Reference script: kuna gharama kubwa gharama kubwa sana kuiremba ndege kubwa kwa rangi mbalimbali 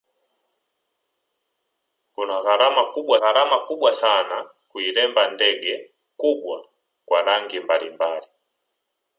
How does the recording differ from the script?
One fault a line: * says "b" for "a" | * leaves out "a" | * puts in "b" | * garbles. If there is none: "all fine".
all fine